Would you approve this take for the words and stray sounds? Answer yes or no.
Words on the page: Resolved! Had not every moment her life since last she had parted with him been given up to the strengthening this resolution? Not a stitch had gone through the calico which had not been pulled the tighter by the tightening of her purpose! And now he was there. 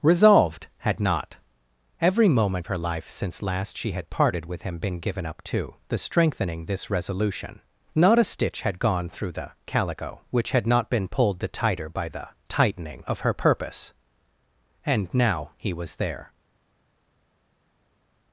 yes